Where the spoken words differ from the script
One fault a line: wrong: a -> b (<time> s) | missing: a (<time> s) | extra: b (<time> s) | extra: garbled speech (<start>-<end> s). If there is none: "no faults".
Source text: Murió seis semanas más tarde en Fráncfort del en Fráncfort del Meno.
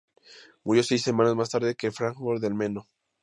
missing: en Fráncfort del (2.5 s)